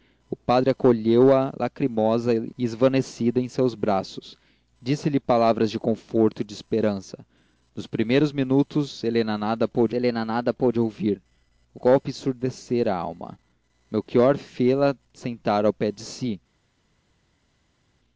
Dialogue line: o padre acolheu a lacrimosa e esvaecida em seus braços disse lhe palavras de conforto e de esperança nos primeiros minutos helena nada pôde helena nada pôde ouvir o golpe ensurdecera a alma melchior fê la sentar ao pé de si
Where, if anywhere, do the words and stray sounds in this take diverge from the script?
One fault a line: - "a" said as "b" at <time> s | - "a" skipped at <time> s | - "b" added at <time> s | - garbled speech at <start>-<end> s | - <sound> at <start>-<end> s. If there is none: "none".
none